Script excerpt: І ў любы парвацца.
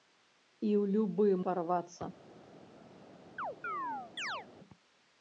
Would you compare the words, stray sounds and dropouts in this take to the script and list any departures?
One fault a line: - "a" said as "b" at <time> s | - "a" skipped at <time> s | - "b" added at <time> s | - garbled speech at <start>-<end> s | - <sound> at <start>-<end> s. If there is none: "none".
- chirp at 3.4-4.5 s